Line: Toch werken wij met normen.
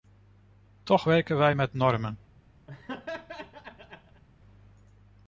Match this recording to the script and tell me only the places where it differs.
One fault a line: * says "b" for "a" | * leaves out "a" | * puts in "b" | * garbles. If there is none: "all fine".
all fine